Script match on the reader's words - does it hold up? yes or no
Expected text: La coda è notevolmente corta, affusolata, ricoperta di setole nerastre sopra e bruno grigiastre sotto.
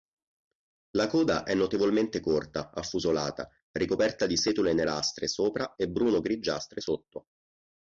yes